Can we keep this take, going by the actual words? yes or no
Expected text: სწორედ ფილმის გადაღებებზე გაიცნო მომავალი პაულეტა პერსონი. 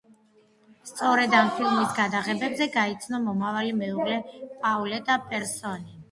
no